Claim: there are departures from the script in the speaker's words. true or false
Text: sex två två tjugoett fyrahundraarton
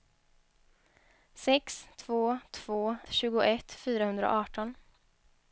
false